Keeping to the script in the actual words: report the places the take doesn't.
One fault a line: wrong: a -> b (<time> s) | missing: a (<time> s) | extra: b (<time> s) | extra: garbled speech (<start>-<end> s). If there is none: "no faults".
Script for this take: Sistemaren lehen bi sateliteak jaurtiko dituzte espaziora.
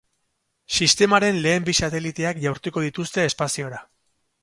no faults